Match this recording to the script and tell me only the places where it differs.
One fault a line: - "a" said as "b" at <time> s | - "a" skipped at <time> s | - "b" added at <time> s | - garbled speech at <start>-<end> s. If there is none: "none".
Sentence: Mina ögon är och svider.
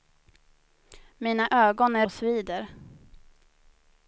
none